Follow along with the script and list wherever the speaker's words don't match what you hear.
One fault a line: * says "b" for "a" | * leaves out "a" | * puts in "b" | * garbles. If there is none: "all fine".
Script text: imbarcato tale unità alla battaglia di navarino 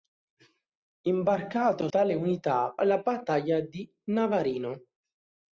all fine